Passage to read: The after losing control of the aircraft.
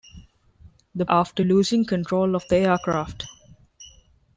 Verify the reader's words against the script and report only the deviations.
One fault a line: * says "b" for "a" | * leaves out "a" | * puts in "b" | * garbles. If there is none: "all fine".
all fine